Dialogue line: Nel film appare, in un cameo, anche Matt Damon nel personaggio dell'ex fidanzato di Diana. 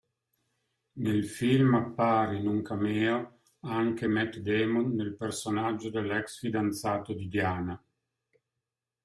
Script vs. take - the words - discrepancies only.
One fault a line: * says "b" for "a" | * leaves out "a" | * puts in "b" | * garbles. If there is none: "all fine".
all fine